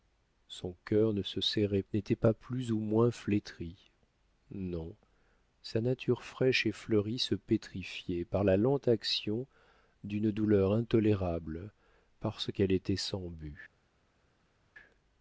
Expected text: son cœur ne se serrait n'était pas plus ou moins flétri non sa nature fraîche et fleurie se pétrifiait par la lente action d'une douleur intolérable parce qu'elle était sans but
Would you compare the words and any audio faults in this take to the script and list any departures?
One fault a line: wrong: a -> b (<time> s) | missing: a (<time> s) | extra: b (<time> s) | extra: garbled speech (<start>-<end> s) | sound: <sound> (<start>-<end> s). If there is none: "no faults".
no faults